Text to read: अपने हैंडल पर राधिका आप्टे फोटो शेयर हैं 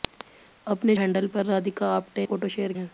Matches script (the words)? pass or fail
pass